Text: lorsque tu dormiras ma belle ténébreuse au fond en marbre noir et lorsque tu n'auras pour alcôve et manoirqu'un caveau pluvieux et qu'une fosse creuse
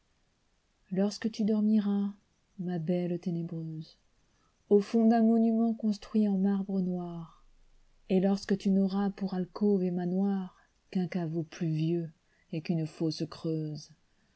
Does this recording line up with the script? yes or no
no